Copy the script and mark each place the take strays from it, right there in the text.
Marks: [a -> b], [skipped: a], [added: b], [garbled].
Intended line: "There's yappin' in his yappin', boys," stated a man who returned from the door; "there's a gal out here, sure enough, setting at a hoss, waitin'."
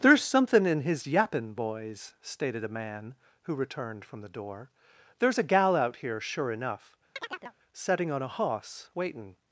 "There's [yappin' -> somethin] in his yappin', boys," stated a man who returned from the door; "there's a gal out here, sure enough, setting [at -> on] a hoss, waitin'."